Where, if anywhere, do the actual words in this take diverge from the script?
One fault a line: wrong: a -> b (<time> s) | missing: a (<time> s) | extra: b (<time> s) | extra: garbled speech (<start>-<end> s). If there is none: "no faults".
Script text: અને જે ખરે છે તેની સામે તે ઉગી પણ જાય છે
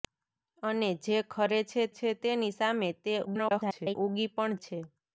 extra: છે (2.0 s)
extra: garbled speech (3.3-4.0 s)
missing: જાય (4.5 s)